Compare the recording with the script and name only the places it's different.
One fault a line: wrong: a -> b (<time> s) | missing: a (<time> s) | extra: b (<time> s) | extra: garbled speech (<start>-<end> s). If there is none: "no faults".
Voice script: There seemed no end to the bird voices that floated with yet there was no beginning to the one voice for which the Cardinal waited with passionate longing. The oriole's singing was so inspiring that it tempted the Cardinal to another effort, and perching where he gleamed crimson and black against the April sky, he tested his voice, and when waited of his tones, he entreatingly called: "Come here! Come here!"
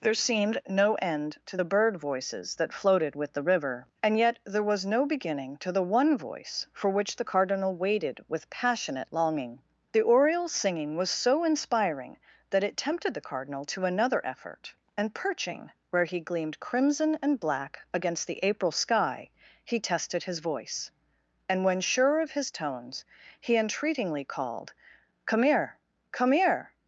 extra: the river and (3.3 s)
wrong: waited -> sure (21.8 s)